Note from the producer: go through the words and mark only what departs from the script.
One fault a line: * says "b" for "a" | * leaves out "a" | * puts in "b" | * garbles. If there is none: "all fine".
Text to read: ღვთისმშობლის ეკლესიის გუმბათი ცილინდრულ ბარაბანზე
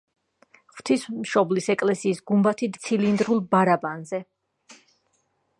all fine